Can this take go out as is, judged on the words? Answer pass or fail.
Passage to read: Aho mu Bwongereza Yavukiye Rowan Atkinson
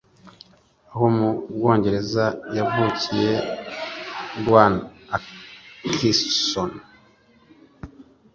pass